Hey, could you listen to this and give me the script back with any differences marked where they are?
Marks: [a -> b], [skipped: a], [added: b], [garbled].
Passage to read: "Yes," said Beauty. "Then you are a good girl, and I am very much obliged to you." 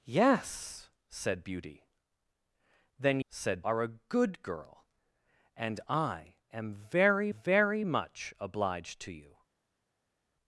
"Yes," said Beauty. "Then [you -> said] are a good girl, and I am very [added: very] much obliged to you."